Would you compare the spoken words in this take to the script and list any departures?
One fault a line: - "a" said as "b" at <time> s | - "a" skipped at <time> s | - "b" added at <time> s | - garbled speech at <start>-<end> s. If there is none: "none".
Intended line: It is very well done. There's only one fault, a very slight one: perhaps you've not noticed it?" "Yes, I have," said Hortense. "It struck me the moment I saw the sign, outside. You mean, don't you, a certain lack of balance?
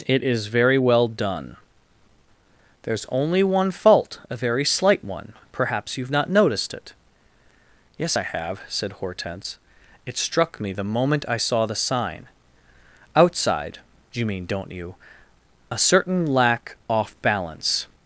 - "of" said as "off" at 16.9 s